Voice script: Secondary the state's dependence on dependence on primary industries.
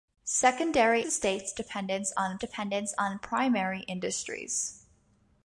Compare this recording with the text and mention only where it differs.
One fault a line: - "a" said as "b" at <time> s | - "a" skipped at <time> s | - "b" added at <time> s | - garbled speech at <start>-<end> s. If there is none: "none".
none